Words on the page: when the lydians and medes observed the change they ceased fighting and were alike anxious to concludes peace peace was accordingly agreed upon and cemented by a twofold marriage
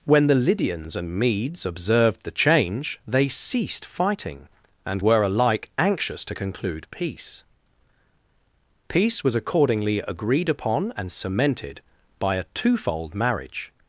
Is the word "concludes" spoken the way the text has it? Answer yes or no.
no